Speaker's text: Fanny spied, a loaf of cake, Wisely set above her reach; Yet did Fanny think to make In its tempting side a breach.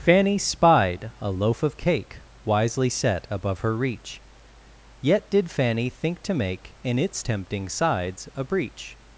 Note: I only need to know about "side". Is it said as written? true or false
false